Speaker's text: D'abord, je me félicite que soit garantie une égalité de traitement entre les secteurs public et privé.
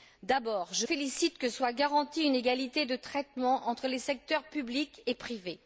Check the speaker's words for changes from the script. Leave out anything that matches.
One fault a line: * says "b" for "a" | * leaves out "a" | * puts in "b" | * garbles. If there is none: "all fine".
* leaves out "me"